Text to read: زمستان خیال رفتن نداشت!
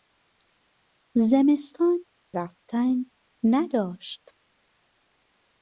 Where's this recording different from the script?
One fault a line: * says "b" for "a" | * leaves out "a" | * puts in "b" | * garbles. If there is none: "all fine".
* leaves out "خیال"